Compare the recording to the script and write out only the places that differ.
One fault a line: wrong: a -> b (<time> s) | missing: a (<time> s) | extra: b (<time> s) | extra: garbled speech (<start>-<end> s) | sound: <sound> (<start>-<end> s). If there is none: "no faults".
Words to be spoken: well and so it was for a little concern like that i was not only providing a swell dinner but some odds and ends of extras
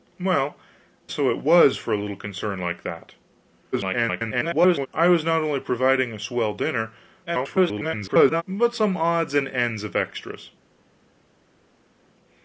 missing: and (0.6 s)
extra: garbled speech (3.7-4.9 s)
extra: garbled speech (7.3-8.4 s)